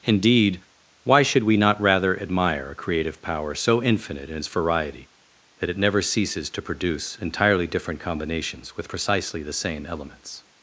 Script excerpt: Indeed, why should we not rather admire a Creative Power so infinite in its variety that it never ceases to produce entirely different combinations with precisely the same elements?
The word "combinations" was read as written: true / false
true